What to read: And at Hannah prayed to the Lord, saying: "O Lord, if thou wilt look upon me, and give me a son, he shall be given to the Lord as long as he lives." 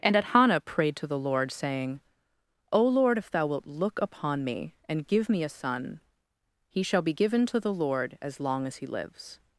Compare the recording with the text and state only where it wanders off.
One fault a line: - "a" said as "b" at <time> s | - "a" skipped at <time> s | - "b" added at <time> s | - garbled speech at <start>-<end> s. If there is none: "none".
none